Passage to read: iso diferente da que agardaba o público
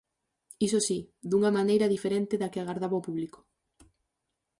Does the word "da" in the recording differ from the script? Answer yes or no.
no